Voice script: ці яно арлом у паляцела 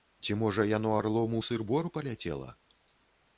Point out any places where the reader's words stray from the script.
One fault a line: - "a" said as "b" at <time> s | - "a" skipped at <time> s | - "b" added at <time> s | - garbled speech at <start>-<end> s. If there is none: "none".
- "можа" added at 0.4 s
- "сыр бор" added at 1.5 s